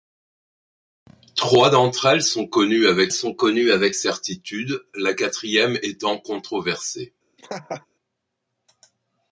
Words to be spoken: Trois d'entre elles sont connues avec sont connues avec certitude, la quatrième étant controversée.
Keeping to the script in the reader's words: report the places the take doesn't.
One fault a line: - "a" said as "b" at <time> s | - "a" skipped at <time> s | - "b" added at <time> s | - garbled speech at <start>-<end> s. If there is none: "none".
none